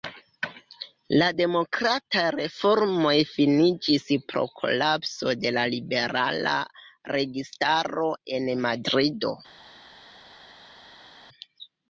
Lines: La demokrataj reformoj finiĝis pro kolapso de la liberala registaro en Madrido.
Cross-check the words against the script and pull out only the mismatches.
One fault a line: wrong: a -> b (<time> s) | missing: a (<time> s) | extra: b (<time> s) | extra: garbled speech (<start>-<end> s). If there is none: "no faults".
no faults